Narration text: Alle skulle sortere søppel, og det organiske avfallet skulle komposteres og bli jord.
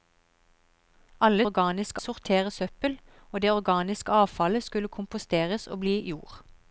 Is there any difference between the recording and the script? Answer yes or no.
yes